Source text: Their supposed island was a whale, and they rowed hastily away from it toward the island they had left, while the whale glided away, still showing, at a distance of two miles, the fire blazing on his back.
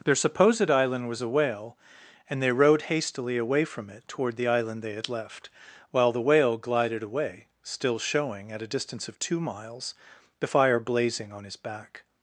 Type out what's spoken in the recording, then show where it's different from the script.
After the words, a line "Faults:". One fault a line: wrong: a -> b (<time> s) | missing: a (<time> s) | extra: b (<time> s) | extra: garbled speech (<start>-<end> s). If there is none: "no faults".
Their supposed island was a whale, and they rowed hastily away from it toward the island they had left, while the whale glided away, still showing, at a distance of two miles, the fire blazing on his back.
Faults:
no faults